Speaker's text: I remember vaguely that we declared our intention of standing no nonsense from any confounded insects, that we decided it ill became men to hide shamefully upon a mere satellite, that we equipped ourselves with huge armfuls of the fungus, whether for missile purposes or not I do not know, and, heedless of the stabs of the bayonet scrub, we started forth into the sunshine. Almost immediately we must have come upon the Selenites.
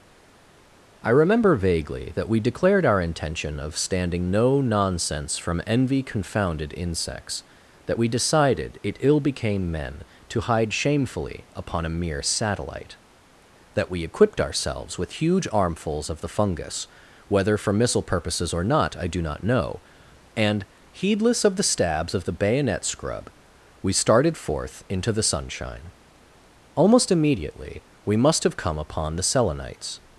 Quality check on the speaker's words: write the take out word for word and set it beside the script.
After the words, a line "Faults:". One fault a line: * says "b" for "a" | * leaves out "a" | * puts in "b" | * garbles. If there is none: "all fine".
I remember vaguely that we declared our intention of standing no nonsense from envy confounded insects, that we decided it ill became men to hide shamefully upon a mere satellite, that we equipped ourselves with huge armfuls of the fungus, whether for missile purposes or not I do not know, and, heedless of the stabs of the bayonet scrub, we started forth into the sunshine. Almost immediately we must have come upon the Selenites.
Faults:
* says "envy" for "any"